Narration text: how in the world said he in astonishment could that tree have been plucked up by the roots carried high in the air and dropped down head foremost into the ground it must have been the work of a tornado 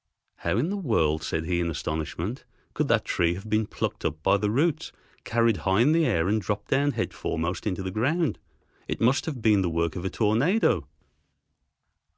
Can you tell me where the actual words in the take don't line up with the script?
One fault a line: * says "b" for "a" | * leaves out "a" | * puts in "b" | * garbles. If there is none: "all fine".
all fine